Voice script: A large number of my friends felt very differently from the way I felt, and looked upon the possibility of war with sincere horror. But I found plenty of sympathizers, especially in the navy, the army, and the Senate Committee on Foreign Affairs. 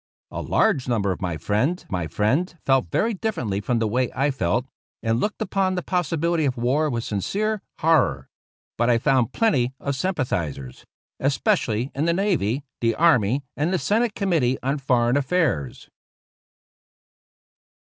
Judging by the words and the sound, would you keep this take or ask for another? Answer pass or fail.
fail